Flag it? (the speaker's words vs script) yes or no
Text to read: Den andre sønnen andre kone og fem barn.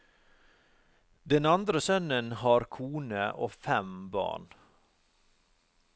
yes